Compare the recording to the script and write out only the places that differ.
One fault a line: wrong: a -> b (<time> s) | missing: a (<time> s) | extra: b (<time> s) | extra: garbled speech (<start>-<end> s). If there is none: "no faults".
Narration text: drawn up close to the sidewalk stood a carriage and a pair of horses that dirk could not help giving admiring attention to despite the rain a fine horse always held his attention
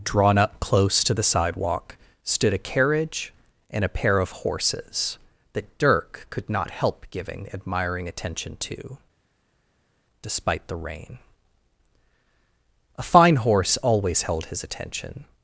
no faults